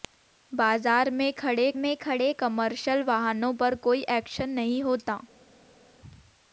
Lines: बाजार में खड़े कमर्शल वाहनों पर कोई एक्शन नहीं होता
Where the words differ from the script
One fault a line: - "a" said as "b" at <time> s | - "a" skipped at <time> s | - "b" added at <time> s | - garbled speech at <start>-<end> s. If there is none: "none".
- "में खड़े" added at 1.8 s